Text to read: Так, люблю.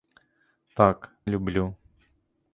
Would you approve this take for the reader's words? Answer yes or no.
yes